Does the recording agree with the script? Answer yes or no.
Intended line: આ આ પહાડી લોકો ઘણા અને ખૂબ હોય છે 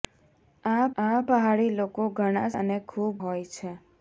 yes